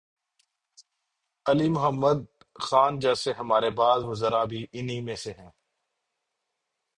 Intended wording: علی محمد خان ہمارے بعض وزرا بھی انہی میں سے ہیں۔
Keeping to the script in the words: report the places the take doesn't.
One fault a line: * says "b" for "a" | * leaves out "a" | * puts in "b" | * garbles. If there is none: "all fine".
* puts in "جیسے"